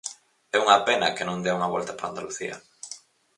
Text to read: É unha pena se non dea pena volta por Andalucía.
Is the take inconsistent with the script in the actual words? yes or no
yes